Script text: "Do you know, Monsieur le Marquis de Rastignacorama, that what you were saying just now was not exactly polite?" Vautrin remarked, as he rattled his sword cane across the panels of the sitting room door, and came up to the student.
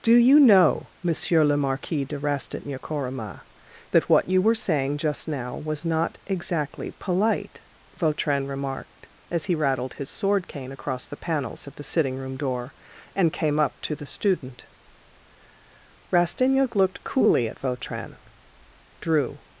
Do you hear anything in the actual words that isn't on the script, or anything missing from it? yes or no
yes